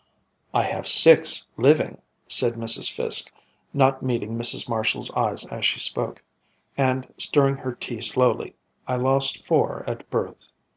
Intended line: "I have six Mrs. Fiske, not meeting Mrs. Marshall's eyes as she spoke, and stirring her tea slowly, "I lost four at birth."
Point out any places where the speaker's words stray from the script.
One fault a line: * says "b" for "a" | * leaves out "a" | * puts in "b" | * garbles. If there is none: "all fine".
* puts in "living said"